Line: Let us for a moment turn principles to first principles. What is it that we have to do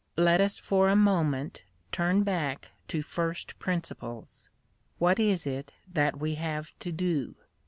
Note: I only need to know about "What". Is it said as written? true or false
true